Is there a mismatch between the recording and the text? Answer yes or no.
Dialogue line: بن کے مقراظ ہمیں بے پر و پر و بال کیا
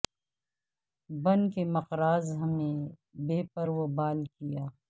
yes